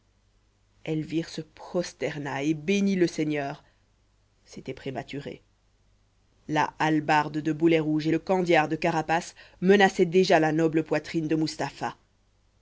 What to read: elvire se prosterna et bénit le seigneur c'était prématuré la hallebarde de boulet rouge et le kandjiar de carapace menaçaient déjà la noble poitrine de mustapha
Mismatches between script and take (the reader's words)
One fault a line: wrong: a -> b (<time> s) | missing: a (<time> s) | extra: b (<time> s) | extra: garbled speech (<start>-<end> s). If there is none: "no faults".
no faults